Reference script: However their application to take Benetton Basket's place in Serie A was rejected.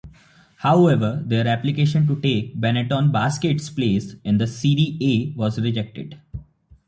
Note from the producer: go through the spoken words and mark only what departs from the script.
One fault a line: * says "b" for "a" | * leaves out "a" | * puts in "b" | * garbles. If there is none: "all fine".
* puts in "the"